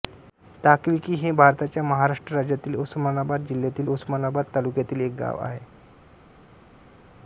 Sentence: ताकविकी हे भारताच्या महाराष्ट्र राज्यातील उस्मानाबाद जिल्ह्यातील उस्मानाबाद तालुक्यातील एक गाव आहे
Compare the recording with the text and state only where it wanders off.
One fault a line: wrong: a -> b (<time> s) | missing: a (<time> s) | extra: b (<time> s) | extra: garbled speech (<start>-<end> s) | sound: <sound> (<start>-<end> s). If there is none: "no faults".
no faults